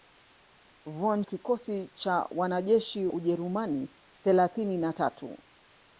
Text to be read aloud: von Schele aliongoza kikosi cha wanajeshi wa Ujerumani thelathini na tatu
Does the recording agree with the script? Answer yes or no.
no